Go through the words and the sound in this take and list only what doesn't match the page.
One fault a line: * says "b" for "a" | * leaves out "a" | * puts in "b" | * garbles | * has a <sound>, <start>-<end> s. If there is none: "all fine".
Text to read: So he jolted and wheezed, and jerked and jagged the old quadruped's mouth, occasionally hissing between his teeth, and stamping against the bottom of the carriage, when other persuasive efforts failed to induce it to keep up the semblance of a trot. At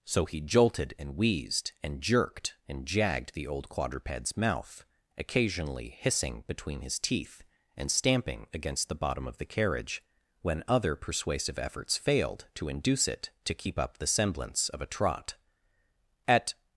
all fine